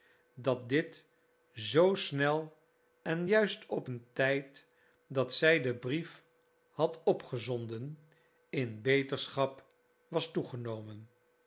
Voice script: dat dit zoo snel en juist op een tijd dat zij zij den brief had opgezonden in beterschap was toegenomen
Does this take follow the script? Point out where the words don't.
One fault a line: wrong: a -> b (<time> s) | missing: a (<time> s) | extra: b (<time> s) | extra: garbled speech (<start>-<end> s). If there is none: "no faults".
missing: zij (5.6 s)